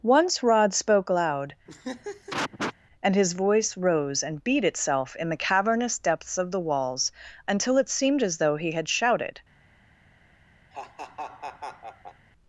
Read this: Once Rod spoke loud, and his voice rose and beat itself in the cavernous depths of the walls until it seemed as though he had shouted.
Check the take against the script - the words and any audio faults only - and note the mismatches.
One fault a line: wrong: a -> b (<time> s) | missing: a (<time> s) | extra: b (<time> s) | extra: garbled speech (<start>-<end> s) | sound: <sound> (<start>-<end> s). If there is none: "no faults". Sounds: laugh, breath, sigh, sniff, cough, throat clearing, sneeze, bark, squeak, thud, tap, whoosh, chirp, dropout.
sound: laugh (1.7-2.7 s)
sound: laugh (10.7-12.3 s)